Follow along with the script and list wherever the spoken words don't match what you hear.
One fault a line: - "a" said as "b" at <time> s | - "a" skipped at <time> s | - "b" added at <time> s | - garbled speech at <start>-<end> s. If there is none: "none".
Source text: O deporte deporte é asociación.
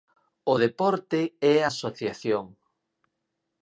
- "deporte" skipped at 1.2 s